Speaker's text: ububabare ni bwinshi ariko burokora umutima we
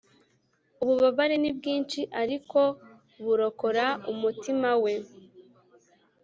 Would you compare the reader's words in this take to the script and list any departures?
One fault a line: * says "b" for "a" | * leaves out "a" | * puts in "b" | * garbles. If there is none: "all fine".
all fine